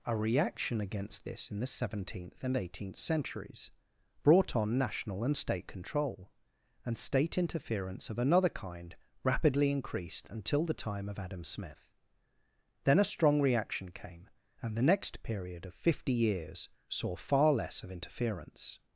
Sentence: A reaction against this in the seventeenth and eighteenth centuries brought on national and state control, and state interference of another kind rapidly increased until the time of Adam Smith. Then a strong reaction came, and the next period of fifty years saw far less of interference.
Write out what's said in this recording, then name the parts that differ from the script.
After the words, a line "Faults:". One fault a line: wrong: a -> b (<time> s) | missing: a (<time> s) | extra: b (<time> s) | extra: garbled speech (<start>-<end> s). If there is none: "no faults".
A reaction against this in the seventeenth and eighteenth centuries brought on national and state control, and state interference of another kind rapidly increased until the time of Adam Smith. Then a strong reaction came, and the next period of fifty years saw far less of interference.
Faults:
no faults